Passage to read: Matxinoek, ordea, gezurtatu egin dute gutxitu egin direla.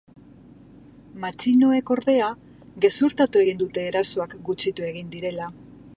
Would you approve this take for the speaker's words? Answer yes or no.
no